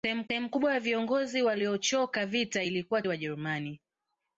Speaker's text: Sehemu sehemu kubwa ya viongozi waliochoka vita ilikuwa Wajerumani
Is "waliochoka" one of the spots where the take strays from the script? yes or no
no